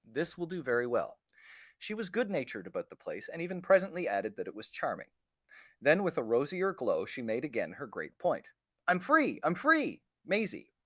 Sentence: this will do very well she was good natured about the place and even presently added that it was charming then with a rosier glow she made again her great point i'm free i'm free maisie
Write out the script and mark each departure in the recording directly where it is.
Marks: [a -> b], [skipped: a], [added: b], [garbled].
this will do very well she was good natured about the place and even presently added that it was charming then with a rosier glow she made again her great point i'm free i'm free maisie